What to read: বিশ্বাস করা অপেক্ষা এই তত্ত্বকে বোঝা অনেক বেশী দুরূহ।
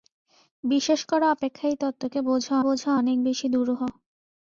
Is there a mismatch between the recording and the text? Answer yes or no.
yes